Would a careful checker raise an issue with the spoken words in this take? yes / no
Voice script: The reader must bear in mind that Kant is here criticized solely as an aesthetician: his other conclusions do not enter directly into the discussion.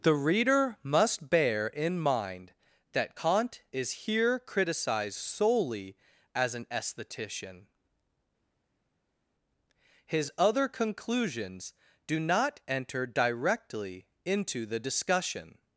no